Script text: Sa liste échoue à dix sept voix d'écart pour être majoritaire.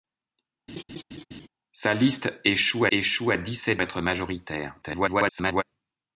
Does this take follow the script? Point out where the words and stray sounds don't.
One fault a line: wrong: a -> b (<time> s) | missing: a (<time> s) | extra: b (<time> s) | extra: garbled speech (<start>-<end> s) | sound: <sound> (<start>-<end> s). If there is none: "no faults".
sound: laugh (0.7-1.5 s)
extra: échoue (2.9 s)
missing: voix d'écart pour (3.8 s)
extra: garbled speech (4.8-5.6 s)